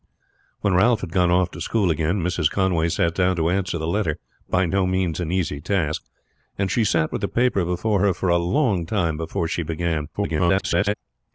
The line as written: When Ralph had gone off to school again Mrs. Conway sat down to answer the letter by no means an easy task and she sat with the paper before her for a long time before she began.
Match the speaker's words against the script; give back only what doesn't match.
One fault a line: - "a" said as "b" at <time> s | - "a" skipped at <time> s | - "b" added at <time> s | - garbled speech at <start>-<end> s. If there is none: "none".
- garbled speech at 10.1-10.9 s